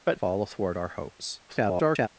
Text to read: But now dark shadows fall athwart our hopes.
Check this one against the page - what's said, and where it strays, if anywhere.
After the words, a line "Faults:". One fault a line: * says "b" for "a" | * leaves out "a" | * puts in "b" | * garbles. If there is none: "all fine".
But fall athwart our hopes. [garbled]
Faults:
* leaves out "now dark shadows"
* garbles